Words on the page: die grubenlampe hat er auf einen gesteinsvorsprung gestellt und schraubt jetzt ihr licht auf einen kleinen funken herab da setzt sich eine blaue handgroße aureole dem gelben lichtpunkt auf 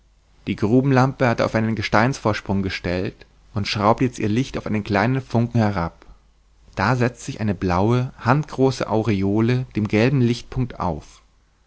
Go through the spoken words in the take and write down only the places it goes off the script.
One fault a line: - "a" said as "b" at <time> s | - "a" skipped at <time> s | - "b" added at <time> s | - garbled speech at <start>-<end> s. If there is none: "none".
none